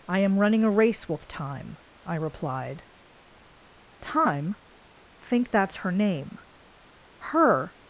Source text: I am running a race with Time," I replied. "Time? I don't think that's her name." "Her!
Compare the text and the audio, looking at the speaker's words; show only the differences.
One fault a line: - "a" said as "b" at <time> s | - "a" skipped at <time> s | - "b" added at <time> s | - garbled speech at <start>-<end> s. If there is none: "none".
- "I don't" skipped at 4.5 s